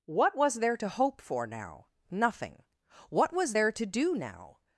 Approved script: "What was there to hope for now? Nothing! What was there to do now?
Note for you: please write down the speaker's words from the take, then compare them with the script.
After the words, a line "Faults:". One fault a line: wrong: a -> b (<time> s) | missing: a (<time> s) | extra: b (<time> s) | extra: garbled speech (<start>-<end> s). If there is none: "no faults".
"What was there to hope for now? Nothing! What was there to do now?
Faults:
no faults